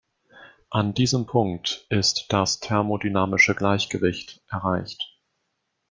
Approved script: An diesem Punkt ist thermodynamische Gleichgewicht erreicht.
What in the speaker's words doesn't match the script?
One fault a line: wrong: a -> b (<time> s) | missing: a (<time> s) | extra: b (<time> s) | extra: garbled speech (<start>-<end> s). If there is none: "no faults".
extra: das (2.3 s)